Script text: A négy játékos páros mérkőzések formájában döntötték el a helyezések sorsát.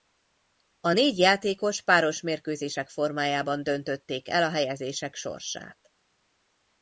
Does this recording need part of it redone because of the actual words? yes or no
no